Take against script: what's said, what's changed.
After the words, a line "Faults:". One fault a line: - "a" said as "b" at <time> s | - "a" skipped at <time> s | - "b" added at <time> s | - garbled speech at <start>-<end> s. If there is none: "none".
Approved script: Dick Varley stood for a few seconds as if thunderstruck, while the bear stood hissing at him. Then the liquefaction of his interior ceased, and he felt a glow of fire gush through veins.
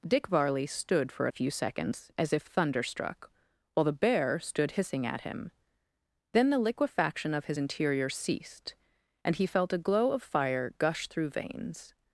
Dick Varley stood for a few seconds as if thunderstruck, while the bear stood hissing at him. Then the liquefaction of his interior ceased, and he felt a glow of fire gush through veins.
Faults:
none